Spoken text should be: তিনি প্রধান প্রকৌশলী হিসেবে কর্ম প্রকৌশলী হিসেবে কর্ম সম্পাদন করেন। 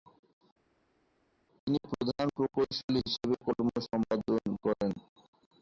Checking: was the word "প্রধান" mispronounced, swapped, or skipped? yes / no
no